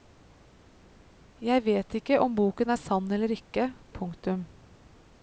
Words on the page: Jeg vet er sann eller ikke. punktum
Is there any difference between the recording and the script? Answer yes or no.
yes